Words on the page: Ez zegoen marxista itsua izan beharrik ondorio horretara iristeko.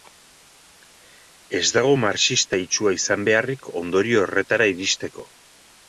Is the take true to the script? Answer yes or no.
no